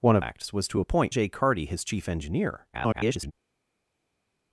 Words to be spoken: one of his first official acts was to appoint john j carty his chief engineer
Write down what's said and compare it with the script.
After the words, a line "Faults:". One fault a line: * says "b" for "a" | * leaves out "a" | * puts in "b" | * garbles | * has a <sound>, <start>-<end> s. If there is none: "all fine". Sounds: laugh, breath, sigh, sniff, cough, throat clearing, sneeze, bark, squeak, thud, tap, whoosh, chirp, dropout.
one of acts was to appoint j carty his chief engineer [garbled]
Faults:
* leaves out "his first official"
* leaves out "john"
* garbles